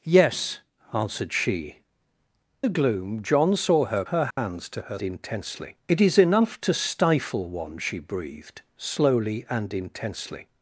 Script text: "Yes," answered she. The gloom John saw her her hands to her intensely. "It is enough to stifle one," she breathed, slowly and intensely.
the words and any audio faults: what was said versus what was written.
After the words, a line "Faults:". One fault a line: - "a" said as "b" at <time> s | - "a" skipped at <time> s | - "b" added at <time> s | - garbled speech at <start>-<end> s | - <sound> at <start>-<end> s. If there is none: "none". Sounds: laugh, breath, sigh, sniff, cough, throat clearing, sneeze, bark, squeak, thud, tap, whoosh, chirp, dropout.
"Yes," answered she. The gloom John saw her her hands to her intensely. "It is enough to stifle one," she breathed, slowly and intensely.
Faults:
- dropout at 4.3-4.4 s